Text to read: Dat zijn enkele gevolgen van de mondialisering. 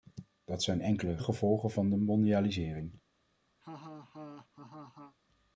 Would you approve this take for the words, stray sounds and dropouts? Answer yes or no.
no